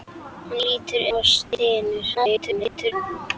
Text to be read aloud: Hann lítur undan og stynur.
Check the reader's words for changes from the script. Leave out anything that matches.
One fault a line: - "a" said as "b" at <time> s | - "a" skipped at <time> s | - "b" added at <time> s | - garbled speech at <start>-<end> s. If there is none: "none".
- "undan" skipped at 1.0 s
- garbled speech at 2.1-2.9 s